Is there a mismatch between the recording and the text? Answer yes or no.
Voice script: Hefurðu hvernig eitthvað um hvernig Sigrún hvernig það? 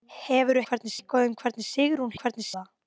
no